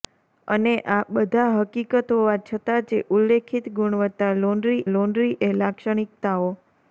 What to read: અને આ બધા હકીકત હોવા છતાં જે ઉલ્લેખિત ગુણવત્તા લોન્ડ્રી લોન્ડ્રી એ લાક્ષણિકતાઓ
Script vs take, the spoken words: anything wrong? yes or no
no